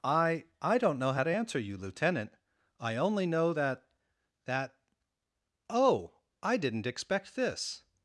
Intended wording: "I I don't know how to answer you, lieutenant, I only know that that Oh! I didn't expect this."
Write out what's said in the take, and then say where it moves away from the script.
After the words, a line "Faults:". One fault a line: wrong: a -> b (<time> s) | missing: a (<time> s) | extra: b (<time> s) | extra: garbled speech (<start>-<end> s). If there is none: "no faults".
"I I don't know how to answer you, lieutenant, I only know that that Oh! I didn't expect this."
Faults:
no faults